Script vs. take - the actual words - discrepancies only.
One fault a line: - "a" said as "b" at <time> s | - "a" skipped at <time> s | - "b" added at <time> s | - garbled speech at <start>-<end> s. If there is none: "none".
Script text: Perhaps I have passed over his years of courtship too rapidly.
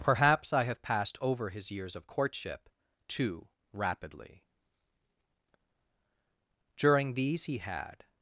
- "During these he had" added at 6.8 s